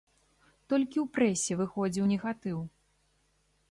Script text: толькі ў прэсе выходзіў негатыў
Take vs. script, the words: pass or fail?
pass